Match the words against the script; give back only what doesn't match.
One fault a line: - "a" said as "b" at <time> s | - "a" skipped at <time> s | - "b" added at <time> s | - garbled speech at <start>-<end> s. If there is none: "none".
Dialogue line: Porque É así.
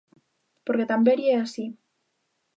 - "Tamberi" added at 0.9 s